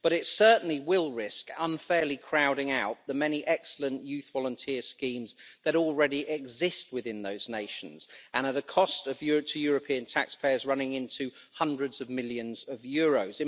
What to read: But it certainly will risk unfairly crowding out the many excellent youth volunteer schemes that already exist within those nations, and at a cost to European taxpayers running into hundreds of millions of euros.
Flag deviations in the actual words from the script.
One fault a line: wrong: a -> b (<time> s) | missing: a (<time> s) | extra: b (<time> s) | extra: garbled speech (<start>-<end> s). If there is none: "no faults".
no faults